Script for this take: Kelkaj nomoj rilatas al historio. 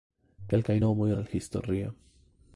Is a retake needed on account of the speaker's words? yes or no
yes